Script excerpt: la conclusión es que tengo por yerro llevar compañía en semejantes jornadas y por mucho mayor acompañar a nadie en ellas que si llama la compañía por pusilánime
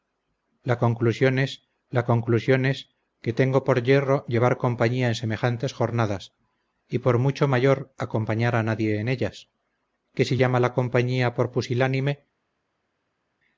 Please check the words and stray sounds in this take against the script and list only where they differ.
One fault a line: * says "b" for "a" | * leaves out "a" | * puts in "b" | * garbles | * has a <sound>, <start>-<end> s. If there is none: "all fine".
* puts in "la conclusión es"